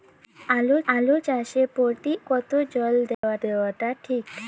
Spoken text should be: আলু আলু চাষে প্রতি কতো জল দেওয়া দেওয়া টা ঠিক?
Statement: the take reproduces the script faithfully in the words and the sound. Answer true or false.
false